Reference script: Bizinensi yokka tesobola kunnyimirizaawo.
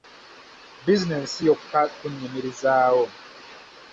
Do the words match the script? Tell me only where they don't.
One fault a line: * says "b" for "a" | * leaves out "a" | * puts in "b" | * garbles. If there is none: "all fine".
* leaves out "tesobola"